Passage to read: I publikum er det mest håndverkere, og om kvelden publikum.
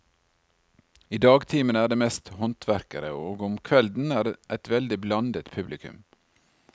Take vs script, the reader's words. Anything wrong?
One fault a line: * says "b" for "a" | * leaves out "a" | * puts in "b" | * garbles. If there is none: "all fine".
* says "dagtimene" for "publikum"
* puts in "et veldig blandet"